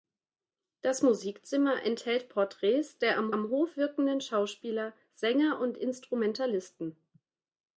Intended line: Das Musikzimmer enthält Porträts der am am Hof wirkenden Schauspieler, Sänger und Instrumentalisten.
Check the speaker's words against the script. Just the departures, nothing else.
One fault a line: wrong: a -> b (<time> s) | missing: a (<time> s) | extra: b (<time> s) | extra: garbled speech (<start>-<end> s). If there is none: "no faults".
no faults